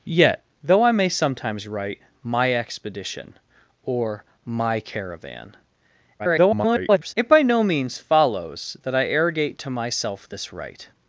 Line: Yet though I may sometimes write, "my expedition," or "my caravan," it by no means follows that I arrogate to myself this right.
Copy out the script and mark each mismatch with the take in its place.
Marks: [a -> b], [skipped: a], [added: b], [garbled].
Yet though I may sometimes write, "my expedition," or "my caravan," [garbled] it by no means follows that I arrogate to myself this right.